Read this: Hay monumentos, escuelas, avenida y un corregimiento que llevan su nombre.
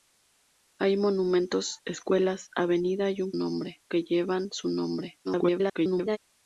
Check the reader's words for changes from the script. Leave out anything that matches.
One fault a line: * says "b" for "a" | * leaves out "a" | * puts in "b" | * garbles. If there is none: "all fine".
* says "nombre" for "corregimiento"
* garbles